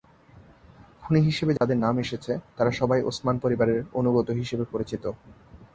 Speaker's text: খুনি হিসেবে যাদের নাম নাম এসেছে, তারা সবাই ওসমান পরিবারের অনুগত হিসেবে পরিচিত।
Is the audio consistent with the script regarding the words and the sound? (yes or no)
no